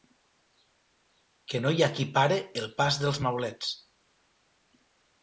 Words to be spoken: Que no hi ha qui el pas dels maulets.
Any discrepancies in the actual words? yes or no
yes